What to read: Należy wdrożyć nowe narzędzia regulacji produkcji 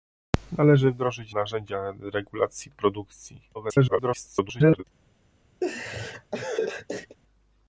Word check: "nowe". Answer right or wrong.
wrong